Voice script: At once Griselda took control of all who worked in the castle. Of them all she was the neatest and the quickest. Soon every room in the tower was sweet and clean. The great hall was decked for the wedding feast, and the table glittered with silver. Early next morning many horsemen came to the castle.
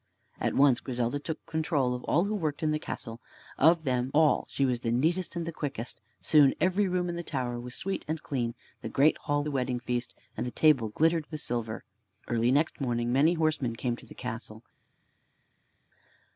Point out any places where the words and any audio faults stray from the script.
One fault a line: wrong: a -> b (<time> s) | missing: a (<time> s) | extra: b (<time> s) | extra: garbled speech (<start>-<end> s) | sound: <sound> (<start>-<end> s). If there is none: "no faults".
missing: was decked for (9.4 s)